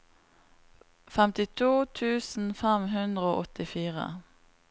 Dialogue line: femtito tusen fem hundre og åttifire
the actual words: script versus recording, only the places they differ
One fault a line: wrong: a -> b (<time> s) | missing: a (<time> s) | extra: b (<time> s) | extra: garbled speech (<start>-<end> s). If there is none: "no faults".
no faults